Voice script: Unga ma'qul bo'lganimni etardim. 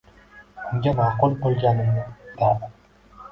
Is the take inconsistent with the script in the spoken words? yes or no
no